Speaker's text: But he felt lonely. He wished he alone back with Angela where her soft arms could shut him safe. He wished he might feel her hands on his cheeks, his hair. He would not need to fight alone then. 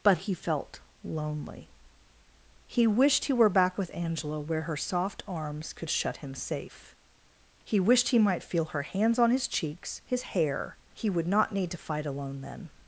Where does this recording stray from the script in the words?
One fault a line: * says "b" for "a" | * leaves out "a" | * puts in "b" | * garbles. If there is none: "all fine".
* says "were" for "alone"